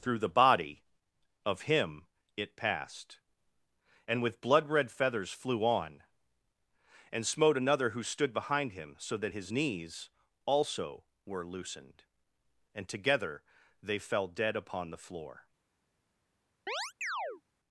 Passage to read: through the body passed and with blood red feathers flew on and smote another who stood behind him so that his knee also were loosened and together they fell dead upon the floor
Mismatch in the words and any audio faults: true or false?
true